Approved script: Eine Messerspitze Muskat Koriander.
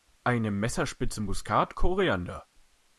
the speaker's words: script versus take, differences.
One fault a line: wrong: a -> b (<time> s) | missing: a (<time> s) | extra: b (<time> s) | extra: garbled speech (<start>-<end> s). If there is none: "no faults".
no faults